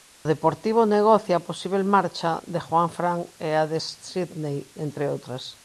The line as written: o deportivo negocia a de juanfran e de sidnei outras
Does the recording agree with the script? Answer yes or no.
no